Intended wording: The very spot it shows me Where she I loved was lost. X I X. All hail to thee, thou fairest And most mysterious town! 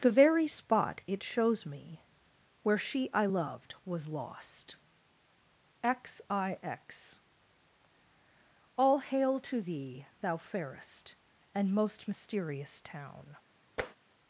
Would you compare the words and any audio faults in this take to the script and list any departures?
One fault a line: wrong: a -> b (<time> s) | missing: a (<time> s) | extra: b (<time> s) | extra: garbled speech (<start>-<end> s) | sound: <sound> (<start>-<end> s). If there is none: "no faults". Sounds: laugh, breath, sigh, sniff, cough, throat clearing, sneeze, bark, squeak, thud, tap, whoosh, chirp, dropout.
sound: tap (13.8-14.0 s)